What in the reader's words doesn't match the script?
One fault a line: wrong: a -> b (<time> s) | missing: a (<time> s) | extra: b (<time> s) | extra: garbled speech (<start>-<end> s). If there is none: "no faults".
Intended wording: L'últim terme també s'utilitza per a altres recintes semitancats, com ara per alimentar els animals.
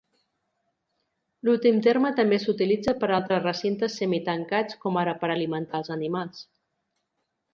no faults